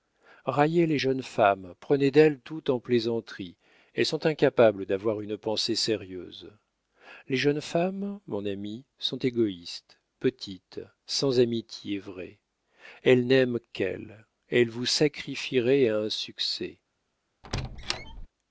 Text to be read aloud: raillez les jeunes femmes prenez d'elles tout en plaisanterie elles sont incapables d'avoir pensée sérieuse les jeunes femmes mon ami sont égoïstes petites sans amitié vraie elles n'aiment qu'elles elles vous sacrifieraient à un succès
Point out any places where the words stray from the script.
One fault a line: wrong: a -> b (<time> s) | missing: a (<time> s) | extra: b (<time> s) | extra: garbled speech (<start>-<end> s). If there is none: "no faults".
extra: une (5.2 s)